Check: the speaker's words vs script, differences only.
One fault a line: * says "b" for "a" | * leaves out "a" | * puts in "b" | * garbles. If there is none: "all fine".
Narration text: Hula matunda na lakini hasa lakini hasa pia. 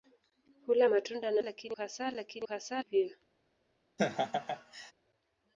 all fine